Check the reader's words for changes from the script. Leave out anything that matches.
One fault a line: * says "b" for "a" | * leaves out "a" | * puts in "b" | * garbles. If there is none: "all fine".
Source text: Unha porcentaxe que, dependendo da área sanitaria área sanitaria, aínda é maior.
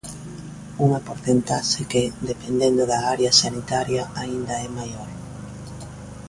* leaves out "área sanitaria"